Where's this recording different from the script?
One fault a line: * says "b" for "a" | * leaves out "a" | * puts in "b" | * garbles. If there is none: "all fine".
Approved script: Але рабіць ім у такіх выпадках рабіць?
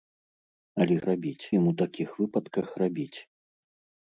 all fine